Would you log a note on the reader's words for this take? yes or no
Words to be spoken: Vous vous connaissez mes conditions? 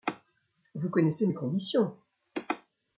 yes